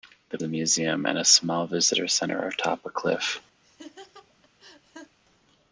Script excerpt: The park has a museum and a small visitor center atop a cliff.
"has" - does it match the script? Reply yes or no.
no